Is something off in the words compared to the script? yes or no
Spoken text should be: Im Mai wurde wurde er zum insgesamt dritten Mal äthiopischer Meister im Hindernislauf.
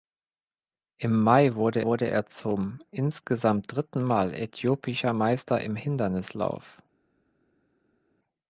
no